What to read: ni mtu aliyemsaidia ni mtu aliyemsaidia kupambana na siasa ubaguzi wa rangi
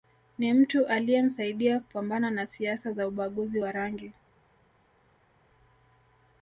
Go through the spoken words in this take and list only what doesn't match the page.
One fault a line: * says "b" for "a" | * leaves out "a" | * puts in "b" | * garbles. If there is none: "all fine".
* leaves out "ni mtu aliyemsaidia"
* puts in "za"